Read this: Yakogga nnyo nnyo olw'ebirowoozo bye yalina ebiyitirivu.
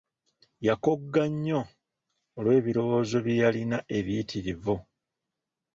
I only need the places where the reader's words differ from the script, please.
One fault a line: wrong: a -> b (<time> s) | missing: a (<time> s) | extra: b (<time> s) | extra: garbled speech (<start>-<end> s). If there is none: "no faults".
missing: nnyo (1.6 s)